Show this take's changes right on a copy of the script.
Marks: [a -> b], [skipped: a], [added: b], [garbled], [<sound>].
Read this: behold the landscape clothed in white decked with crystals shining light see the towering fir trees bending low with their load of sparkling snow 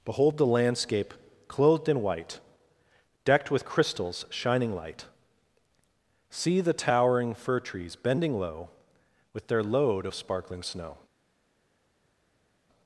behold the landscape clothed in white decked with crystals shining light see the towering fir trees bending low with their load of sparkling snow